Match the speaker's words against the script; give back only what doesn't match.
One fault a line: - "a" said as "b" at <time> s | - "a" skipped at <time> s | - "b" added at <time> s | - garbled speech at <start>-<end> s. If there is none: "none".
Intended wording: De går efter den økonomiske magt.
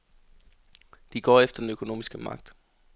none